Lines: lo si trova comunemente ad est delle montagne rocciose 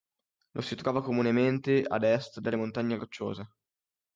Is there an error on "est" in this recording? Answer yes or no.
no